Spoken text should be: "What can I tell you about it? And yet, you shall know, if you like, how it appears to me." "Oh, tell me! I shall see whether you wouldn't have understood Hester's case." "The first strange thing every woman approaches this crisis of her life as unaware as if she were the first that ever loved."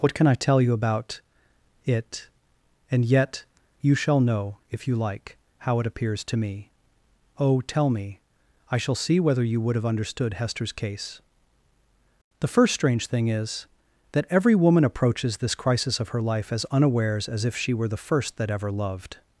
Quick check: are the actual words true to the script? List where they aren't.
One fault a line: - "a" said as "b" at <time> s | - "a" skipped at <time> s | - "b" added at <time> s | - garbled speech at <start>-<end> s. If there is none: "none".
- "wouldn't" said as "would" at 9.6 s
- "is that" added at 13.3 s
- "unaware" said as "unawares" at 16.7 s